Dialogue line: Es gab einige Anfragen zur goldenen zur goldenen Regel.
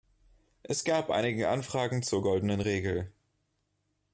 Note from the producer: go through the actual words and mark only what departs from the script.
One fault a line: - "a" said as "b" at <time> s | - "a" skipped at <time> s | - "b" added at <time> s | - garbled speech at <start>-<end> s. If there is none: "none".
- "zur goldenen" skipped at 2.6 s